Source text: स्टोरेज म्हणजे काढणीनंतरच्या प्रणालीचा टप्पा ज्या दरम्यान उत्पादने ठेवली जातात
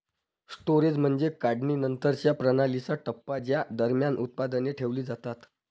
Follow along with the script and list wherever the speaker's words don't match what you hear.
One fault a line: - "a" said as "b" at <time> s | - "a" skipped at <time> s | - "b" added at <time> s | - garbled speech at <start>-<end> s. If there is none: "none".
none